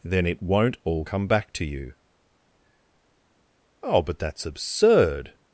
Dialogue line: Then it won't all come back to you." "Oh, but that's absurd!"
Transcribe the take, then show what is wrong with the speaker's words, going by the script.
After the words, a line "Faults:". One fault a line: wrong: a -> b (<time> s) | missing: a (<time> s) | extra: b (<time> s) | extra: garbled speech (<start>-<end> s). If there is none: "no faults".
Then it won't all come back to you." "Oh, but that's absurd!"
Faults:
no faults